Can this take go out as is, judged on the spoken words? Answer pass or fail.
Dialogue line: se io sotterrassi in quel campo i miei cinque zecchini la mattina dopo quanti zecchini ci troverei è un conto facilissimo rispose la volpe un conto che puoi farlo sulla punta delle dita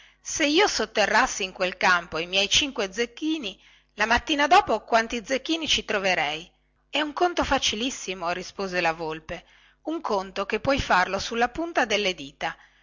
pass